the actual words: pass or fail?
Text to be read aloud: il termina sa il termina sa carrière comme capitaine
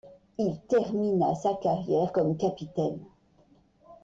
fail